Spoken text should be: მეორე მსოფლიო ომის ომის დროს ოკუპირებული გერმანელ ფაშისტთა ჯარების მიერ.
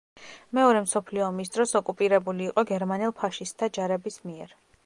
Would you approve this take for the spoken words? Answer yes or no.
no